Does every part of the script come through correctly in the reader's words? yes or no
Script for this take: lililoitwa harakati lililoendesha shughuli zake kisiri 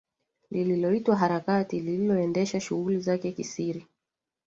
yes